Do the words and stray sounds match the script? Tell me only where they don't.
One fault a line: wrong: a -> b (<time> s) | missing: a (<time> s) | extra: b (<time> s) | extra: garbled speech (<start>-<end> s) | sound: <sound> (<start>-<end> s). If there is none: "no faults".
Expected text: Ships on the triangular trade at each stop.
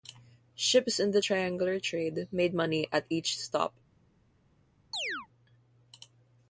wrong: on -> in (1.0 s)
extra: made money (2.3 s)
sound: chirp (4.9-5.3 s)